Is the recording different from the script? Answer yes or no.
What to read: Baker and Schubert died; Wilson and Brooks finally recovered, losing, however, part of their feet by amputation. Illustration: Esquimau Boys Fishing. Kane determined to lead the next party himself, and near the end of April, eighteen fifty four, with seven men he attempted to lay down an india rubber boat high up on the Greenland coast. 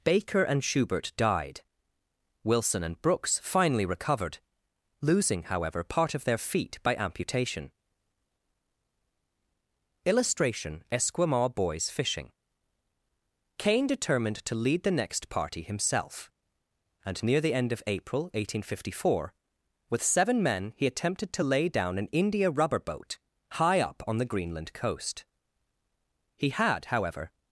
yes